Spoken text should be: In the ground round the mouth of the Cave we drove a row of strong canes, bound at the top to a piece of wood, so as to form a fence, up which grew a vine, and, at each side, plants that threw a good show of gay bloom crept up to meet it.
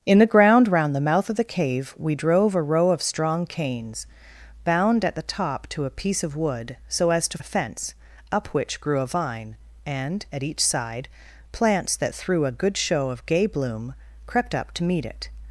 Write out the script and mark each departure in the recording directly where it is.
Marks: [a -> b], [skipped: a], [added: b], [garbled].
In the ground round the mouth of the Cave we drove a row of strong canes, bound at the top to a piece of wood, so as to [skipped: form] a fence, up which grew a vine, and, at each side, plants that threw a good show of gay bloom crept up to meet it.